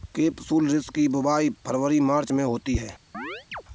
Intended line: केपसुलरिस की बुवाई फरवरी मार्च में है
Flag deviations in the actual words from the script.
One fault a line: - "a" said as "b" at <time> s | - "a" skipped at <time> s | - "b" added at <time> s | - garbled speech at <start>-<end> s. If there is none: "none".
- "होती" added at 2.4 s